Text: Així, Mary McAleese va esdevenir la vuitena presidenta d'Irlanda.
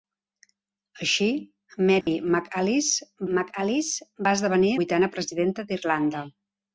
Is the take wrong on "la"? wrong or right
wrong